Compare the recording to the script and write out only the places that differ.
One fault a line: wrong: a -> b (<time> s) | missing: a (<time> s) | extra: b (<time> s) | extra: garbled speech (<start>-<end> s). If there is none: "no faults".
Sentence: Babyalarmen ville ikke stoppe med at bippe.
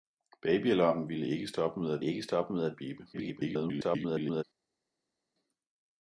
extra: ikke stoppe med (2.0 s)
extra: garbled speech (3.1-4.4 s)